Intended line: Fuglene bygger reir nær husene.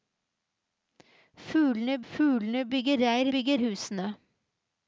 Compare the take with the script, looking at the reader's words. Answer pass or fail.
fail